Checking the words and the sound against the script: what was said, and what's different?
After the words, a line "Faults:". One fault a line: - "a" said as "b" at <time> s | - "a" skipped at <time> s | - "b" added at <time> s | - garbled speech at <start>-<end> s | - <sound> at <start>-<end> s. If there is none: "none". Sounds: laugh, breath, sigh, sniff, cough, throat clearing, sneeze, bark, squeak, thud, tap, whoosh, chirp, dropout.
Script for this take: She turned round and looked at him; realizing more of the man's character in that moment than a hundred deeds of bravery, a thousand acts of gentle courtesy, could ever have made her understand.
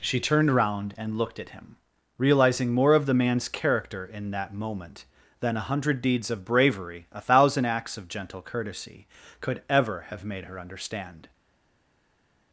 She turned round and looked at him; realizing more of the man's character in that moment than a hundred deeds of bravery, a thousand acts of gentle courtesy, could ever have made her understand.
Faults:
none